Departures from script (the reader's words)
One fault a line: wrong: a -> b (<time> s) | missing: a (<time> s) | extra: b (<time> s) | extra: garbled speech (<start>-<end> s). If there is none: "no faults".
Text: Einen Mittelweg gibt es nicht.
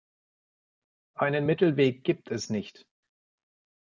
no faults